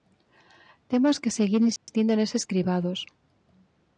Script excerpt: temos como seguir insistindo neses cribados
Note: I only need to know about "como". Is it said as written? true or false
false